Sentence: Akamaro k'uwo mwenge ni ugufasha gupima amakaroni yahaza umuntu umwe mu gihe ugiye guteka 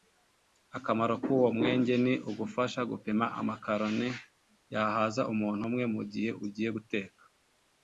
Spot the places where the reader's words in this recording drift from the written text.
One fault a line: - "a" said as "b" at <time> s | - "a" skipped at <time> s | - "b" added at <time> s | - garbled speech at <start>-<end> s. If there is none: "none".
none